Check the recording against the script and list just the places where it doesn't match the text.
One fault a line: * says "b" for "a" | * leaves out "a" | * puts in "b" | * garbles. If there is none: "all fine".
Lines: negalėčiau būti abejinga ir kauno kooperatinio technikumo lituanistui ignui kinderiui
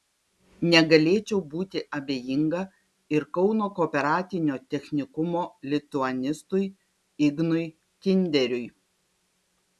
all fine